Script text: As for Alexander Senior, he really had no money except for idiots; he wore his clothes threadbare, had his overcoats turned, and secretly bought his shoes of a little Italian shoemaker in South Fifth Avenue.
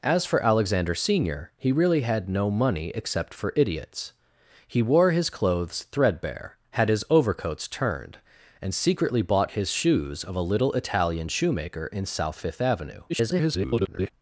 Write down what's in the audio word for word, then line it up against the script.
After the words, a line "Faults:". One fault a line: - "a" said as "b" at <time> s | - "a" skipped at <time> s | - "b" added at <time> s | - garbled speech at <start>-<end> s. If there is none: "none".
As for Alexander Senior, he really had no money except for idiots; he wore his clothes threadbare, had his overcoats turned, and secretly bought his shoes of a little Italian shoemaker in South Fifth Avenue. [garbled]
Faults:
- garbled speech at 13.1-14.1 s